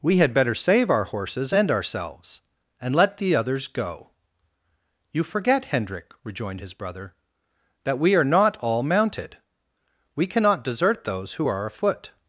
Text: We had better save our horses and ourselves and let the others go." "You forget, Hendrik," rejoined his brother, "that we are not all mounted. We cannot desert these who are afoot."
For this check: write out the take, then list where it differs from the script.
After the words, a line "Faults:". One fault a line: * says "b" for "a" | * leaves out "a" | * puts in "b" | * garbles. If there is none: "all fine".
We had better save our horses and ourselves and let the others go." "You forget, Hendrik," rejoined his brother, "that we are not all mounted. We cannot desert those who are afoot."
Faults:
* says "those" for "these"